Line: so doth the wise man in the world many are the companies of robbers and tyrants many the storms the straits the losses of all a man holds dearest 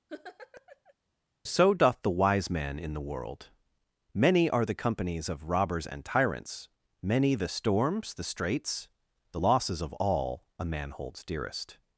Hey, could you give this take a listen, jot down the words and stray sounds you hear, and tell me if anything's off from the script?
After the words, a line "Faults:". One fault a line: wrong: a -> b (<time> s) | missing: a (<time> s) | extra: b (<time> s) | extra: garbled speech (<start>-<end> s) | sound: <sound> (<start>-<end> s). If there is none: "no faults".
so doth the wise man in the world many are the companies of robbers and tyrants many the storms the straits the losses of all a man holds dearest
Faults:
sound: laugh (0.1-0.9 s)